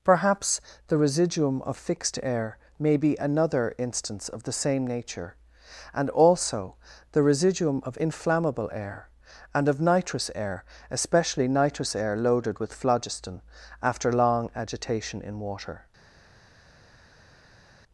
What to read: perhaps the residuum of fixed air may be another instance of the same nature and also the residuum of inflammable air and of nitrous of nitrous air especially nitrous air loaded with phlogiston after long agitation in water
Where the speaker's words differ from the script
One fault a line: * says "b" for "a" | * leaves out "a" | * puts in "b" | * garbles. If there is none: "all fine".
* leaves out "of nitrous"